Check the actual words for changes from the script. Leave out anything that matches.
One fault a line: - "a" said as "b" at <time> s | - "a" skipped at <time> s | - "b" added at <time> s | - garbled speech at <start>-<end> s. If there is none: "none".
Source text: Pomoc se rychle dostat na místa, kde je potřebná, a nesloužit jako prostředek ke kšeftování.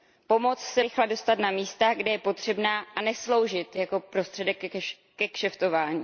none